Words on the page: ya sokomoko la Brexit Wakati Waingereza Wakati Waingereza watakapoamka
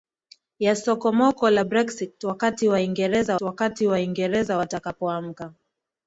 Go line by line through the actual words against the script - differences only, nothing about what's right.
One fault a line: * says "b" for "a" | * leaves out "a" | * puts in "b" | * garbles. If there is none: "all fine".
all fine